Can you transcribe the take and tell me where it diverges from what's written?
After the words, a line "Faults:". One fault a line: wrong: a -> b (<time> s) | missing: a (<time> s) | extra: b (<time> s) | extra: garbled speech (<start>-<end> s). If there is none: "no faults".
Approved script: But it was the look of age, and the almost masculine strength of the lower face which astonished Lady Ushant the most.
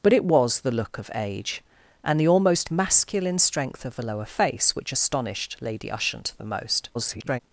But it was the look of age, and the almost masculine strength of the lower face which astonished Lady Ushant the most. [garbled]
Faults:
extra: garbled speech (6.9-7.4 s)